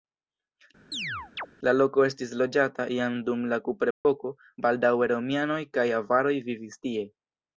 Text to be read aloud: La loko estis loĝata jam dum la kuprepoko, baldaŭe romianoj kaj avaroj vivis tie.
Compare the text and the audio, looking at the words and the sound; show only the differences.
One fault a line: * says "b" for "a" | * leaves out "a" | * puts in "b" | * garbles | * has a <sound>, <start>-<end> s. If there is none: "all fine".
* has a chirp, 0.9-1.5 s
* has a dropout, 3.9-4.0 s